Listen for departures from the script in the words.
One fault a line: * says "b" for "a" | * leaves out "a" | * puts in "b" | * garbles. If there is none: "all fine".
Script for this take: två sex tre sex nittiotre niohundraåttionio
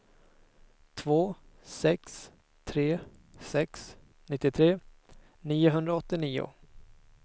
all fine